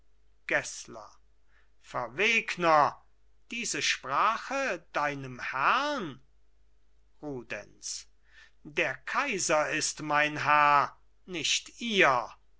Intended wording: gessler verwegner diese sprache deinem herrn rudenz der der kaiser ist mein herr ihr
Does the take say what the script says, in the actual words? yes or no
no